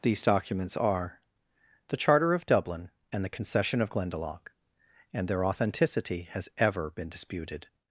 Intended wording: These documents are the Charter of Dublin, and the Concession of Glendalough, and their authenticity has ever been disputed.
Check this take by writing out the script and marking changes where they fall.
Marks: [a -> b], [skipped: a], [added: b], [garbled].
These documents are the Charter of Dublin, and the Concession of Glendalough, and their authenticity has ever been disputed.